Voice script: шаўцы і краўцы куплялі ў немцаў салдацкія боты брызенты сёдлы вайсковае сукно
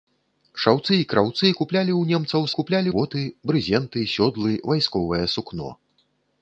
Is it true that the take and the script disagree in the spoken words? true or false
true